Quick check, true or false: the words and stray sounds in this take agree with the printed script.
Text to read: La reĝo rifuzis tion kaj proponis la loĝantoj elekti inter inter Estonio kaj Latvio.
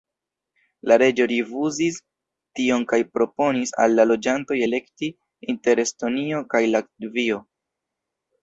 false